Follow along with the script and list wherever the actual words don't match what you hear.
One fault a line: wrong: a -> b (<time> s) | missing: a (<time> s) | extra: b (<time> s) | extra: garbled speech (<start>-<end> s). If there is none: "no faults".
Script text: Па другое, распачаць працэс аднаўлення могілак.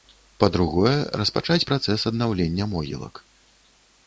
no faults